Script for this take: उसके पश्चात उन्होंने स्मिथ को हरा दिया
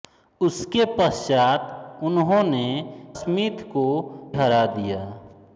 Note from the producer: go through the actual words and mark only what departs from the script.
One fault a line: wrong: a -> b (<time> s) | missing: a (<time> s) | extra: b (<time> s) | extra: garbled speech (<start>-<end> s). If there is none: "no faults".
no faults